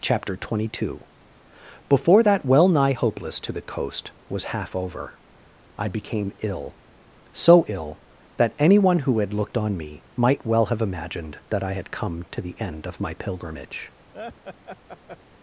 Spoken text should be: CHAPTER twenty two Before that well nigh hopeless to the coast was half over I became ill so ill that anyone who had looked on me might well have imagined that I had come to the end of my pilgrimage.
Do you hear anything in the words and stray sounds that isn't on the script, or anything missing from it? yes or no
yes